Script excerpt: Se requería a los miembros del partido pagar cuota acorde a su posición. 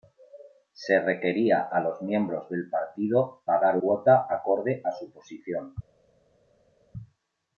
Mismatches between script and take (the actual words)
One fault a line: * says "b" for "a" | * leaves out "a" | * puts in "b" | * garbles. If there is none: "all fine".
all fine